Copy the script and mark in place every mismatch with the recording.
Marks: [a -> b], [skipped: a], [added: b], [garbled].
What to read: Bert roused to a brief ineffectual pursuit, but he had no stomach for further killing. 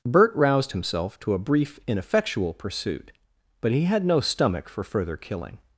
Bert roused [added: himself] to a brief ineffectual pursuit, but he had no stomach for further killing.